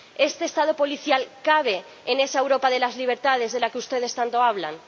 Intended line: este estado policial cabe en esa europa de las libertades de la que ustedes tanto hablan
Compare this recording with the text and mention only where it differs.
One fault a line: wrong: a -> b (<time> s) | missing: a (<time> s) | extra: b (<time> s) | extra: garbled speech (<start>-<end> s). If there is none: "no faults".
no faults